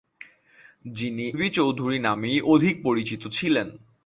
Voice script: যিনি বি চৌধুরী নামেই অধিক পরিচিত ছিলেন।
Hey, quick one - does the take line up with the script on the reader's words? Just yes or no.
yes